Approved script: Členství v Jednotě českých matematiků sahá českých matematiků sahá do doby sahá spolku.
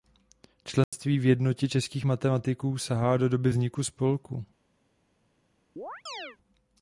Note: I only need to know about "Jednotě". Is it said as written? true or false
true